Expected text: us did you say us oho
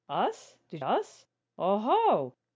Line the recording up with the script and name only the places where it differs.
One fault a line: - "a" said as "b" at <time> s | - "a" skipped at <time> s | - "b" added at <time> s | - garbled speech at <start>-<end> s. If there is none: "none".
- "you say" skipped at 0.8 s